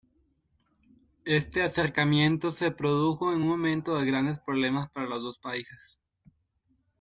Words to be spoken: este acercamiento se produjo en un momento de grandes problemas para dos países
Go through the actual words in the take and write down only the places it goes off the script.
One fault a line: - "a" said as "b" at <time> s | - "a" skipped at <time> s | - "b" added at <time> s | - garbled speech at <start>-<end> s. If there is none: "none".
- "los" added at 5.1 s